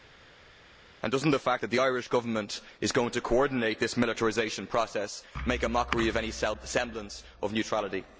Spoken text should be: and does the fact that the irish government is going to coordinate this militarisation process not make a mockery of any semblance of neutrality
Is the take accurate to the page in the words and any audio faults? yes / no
yes